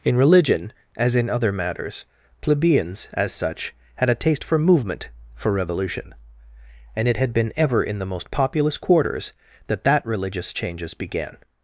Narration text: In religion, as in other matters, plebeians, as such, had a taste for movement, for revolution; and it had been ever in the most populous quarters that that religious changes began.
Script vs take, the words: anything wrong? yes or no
no